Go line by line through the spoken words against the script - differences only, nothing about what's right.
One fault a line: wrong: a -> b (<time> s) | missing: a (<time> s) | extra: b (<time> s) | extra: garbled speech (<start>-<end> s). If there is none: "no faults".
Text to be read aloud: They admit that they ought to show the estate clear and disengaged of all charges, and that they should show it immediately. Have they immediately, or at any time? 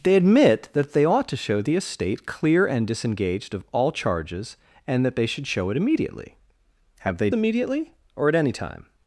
no faults